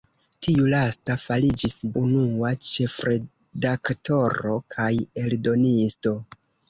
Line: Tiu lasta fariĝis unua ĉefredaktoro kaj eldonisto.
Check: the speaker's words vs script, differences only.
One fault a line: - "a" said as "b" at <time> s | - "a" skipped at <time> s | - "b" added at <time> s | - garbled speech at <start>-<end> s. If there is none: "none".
none